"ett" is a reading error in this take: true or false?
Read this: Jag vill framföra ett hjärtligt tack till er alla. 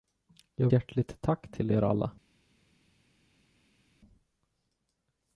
true